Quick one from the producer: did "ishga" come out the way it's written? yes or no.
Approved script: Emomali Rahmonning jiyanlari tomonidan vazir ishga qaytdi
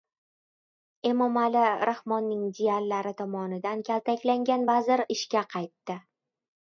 yes